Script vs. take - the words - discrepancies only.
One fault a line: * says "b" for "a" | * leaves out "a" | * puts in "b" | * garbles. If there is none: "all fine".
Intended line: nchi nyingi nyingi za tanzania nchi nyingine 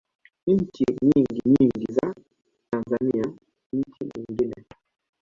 all fine